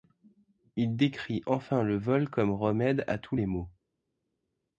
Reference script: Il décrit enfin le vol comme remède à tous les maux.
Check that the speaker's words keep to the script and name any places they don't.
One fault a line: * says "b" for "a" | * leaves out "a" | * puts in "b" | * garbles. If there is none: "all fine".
all fine